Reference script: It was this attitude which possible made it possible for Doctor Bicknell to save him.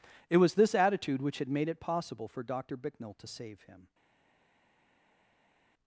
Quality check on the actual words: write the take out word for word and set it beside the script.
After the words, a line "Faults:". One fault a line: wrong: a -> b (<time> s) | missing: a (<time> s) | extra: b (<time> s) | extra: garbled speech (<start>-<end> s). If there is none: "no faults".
It was this attitude which had made it possible for Doctor Bicknell to save him.
Faults:
wrong: possible -> had (1.4 s)